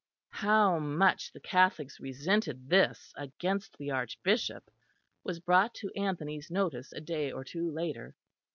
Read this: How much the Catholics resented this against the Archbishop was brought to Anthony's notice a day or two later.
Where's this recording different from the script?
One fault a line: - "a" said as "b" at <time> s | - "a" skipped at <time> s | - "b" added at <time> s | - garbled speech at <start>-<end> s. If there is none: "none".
none